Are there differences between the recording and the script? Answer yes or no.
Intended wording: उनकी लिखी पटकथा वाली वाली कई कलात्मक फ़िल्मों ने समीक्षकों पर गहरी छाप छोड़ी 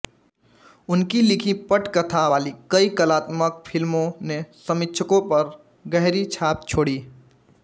yes